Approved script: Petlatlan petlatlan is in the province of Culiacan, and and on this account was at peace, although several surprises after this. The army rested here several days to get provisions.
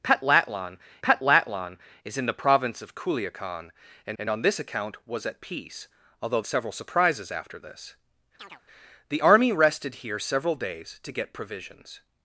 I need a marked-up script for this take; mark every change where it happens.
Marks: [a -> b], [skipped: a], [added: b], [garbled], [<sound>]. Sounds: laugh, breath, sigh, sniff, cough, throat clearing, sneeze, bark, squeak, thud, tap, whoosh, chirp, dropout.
Petlatlan petlatlan is in the province of Culiacan, and and on this account was at peace, although several surprises after this. [chirp] The army rested here several days to get provisions.